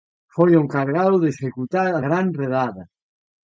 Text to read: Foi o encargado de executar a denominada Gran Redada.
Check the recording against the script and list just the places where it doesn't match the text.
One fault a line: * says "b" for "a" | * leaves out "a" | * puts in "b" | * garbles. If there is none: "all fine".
* leaves out "denominada"